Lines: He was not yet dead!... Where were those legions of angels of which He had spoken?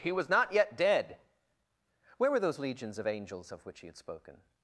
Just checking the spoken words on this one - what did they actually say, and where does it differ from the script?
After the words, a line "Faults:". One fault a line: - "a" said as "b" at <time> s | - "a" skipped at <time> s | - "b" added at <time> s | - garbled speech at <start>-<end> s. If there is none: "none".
He was not yet dead!... Where were those legions of angels of which He had spoken?
Faults:
none